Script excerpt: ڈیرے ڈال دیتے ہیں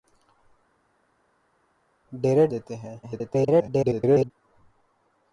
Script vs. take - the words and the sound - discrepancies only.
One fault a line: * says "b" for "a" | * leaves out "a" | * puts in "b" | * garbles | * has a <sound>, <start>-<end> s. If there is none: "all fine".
* leaves out "ڈال"
* garbles